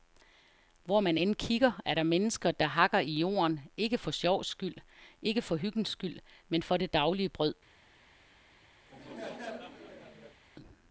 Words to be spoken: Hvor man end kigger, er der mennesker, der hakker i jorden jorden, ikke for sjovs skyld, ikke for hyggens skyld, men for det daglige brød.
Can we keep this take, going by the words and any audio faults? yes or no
no